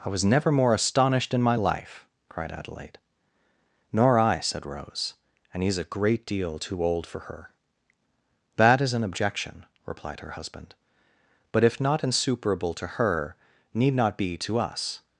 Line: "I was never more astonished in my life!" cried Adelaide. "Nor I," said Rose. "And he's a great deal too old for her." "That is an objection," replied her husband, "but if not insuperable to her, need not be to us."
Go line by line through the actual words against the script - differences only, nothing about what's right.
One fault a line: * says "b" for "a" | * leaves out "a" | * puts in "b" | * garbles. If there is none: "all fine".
all fine